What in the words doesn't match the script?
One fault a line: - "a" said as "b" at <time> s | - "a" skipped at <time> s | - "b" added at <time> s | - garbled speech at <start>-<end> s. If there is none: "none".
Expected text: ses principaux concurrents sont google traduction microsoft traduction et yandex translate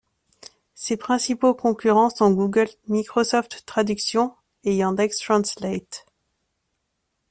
- "traduction" skipped at 2.7 s